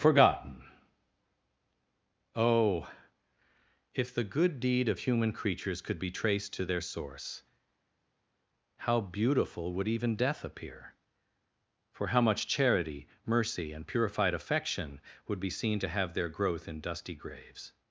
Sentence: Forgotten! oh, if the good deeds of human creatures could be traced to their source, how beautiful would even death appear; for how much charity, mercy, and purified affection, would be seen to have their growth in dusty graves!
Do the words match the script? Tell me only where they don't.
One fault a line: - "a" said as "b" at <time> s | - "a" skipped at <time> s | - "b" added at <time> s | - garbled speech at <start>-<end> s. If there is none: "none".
- "deeds" said as "deed" at 4.6 s